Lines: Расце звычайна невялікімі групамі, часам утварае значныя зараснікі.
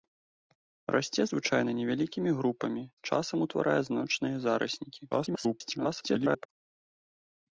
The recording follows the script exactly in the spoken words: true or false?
false